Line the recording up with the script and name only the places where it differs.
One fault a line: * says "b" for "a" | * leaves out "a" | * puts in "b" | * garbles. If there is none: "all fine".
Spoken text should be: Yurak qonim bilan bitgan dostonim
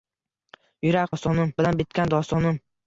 * says "dostonim" for "qonim"